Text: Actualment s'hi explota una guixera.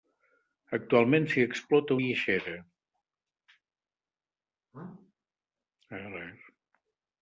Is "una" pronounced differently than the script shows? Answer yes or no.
yes